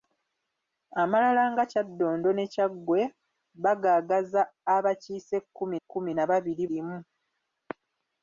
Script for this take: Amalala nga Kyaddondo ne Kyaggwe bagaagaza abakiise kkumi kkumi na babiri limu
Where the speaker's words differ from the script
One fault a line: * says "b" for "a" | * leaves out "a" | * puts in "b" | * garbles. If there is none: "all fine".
all fine